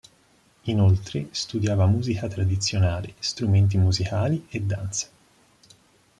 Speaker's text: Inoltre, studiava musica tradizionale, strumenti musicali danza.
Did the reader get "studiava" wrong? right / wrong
right